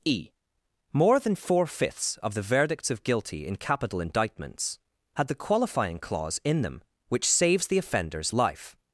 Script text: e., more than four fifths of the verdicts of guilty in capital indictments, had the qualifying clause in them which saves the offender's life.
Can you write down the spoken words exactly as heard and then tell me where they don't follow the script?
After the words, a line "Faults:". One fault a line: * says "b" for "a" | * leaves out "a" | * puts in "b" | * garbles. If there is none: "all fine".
e., more than four fifths of the verdicts of guilty in capital indictments, had the qualifying clause in them which saves the offender's life.
Faults:
all fine